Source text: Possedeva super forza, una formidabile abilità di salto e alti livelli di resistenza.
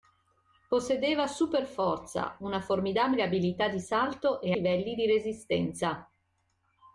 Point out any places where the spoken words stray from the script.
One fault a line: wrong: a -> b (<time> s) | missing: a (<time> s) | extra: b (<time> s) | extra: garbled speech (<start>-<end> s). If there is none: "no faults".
missing: alti (4.5 s)